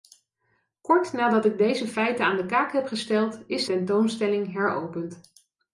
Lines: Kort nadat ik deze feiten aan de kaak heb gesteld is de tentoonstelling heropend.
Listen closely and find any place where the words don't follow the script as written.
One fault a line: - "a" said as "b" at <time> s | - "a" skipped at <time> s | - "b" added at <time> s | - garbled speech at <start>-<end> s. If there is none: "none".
- "de" skipped at 3.6 s